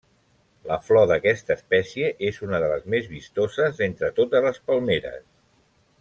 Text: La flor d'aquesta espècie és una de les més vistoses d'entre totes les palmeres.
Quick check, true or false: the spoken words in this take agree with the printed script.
true